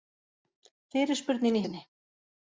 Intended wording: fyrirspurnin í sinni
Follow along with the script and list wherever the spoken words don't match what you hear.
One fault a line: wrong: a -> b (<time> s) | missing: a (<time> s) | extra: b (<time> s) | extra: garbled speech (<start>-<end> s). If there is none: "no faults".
no faults